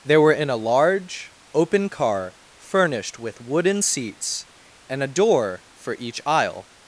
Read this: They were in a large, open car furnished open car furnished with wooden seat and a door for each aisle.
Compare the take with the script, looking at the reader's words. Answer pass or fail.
fail